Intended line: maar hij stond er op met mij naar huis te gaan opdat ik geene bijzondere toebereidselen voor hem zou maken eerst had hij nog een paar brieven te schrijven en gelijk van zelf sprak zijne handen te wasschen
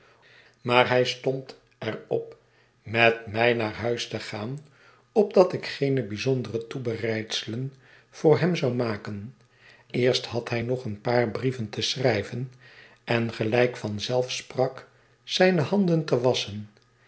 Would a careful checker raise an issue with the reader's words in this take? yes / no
no